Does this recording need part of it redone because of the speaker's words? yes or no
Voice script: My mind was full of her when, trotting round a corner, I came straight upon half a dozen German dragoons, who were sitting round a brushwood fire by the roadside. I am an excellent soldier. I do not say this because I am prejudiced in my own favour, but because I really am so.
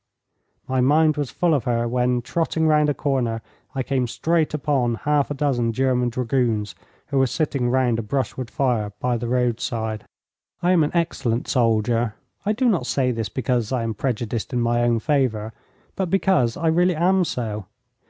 no